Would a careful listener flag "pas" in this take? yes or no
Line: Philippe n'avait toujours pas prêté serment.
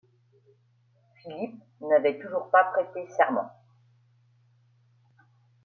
no